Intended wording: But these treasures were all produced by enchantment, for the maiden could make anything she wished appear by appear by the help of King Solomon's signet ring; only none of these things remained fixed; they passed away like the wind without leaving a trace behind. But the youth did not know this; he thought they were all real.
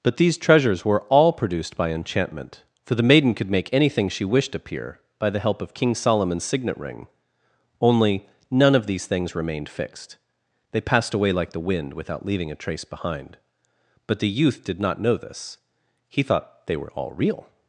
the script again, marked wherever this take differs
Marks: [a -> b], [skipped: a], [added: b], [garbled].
But these treasures were all produced by enchantment, for the maiden could make anything she wished appear by [skipped: appear by] the help of King Solomon's signet ring; only none of these things remained fixed; they passed away like the wind without leaving a trace behind. But the youth did not know this; he thought they were all real.